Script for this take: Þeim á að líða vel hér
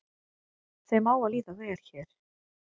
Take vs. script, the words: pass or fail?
pass